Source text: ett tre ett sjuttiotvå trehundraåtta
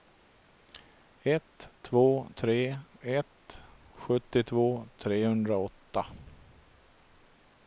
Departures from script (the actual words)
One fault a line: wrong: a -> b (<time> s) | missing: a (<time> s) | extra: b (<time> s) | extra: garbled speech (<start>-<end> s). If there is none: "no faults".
extra: två (1.8 s)